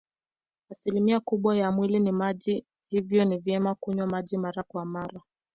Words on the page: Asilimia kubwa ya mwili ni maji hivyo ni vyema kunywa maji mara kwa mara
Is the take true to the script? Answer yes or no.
yes